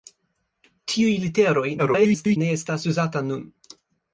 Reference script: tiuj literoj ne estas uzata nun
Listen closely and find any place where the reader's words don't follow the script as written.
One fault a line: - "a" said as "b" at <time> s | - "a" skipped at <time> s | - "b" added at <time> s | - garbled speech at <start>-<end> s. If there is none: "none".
- garbled speech at 1.8-2.4 s